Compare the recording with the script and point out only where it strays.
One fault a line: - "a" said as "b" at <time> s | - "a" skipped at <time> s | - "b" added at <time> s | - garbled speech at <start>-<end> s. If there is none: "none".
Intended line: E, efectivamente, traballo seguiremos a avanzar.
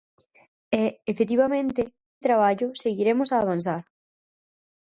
none